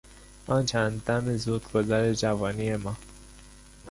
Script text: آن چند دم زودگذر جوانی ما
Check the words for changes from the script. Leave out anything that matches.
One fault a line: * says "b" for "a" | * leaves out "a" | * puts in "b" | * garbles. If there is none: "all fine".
all fine